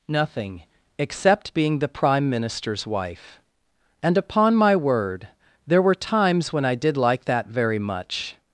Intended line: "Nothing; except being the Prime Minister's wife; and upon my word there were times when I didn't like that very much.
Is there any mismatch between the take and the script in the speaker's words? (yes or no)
yes